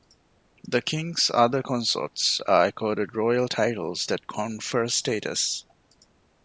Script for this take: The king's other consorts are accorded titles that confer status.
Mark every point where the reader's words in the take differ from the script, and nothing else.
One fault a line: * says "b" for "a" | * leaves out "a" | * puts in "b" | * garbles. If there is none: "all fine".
* puts in "royal"